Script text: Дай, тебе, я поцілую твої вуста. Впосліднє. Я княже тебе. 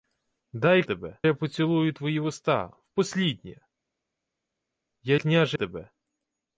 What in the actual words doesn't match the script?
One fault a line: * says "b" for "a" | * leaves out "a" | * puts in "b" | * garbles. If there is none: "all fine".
all fine